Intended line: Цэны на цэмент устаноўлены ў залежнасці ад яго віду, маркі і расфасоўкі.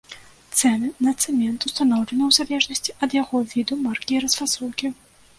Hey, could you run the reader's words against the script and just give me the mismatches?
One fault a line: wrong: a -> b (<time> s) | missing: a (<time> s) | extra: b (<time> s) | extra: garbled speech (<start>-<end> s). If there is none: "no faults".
no faults